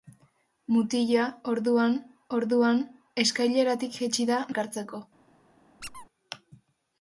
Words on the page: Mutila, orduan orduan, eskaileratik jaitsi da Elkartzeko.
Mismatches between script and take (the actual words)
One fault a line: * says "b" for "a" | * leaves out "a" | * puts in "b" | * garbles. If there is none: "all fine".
all fine